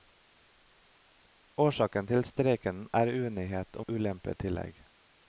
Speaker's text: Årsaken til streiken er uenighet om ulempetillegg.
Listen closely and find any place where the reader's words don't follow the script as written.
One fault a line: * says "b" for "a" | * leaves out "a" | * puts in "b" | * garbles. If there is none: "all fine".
* leaves out "om"